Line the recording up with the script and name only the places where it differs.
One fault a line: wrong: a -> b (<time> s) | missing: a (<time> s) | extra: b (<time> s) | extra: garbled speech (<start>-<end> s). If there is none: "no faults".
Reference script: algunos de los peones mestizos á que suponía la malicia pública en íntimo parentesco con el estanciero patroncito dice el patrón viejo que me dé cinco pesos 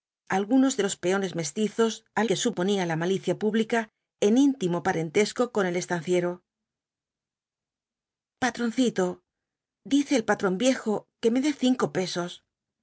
no faults